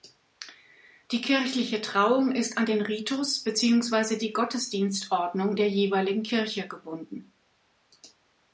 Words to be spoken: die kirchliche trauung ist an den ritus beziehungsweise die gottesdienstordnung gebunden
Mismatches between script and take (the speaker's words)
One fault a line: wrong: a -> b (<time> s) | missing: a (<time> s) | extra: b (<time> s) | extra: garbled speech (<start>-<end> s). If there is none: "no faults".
extra: der jeweiligen kirche (5.6 s)